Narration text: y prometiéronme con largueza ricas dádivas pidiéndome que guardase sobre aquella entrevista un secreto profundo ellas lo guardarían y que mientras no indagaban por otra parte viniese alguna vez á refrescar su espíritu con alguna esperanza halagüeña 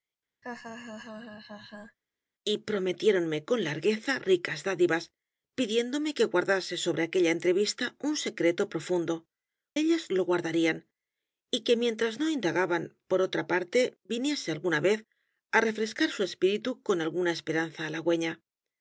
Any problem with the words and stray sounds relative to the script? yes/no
yes